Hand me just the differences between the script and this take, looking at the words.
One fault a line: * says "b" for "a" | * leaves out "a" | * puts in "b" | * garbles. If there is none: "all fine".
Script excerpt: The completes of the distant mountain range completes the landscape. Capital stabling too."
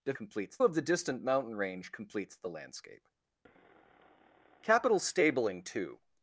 all fine